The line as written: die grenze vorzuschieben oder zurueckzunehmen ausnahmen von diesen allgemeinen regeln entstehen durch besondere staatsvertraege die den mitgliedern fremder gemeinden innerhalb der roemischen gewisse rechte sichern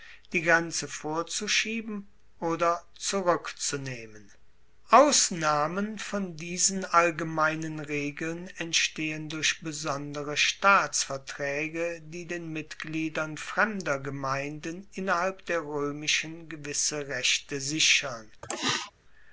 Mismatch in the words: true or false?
false